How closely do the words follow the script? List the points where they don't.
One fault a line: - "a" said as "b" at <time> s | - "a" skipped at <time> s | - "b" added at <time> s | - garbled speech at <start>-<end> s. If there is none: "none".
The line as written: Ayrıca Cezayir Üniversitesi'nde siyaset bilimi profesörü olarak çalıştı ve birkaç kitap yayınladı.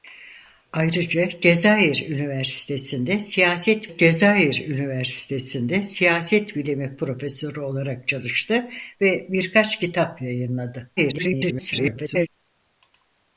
- "Cezayir Üniversitesi'nde siyaset" added at 3.9 s
- garbled speech at 11.0-12.3 s